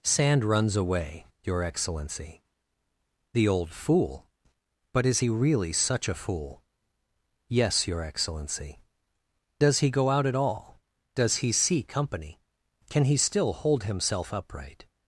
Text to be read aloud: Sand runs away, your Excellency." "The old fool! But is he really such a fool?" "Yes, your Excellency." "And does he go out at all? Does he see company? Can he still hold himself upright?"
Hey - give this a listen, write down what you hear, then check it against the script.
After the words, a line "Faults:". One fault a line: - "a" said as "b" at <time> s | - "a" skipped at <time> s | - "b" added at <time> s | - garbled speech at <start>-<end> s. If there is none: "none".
Sand runs away, your Excellency." "The old fool! But is he really such a fool?" "Yes, your Excellency." "Does he go out at all? Does he see company? Can he still hold himself upright?"
Faults:
- "And" skipped at 8.8 s